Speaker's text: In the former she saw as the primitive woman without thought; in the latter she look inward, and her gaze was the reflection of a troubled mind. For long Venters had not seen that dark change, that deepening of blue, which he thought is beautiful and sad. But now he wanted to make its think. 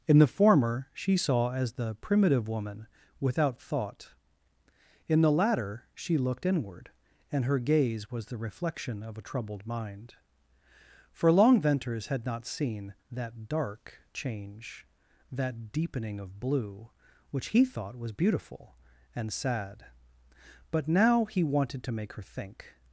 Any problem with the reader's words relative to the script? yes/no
yes